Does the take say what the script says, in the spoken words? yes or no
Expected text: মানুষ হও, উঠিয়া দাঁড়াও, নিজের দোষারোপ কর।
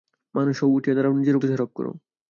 yes